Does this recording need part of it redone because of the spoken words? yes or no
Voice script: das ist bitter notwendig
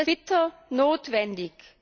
yes